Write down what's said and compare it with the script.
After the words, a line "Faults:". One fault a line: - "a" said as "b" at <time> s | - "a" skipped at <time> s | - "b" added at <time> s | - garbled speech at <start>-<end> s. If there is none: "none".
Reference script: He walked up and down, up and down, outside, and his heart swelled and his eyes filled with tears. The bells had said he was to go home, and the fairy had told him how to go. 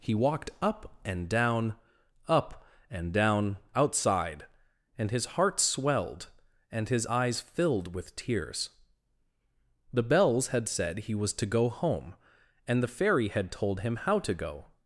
He walked up and down, up and down, outside, and his heart swelled and his eyes filled with tears. The bells had said he was to go home, and the fairy had told him how to go.
Faults:
none